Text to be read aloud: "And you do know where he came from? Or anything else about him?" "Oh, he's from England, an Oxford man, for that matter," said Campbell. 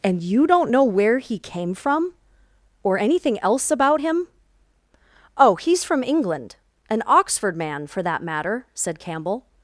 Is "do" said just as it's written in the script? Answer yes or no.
no